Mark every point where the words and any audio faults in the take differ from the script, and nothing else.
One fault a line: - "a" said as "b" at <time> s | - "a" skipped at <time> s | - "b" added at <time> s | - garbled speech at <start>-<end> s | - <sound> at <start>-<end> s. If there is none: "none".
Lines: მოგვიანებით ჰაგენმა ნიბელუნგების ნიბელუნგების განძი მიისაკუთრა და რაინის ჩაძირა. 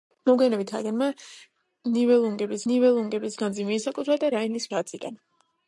none